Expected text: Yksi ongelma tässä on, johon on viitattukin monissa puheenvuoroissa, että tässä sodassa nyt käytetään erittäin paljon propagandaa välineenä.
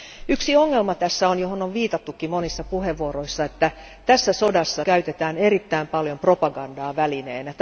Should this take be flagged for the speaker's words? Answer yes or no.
yes